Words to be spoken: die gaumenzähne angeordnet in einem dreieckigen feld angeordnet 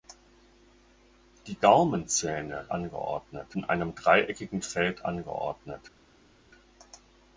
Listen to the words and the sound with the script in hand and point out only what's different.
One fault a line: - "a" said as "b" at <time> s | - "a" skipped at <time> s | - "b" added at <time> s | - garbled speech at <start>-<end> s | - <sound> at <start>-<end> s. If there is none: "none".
none